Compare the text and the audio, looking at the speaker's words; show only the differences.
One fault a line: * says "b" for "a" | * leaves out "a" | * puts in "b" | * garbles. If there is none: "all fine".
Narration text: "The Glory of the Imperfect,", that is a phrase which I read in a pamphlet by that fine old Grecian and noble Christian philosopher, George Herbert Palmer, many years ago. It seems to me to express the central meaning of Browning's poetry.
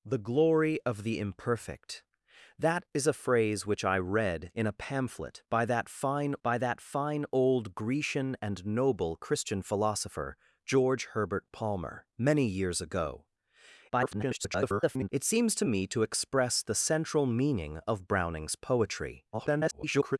* puts in "by that fine"
* garbles
* garbles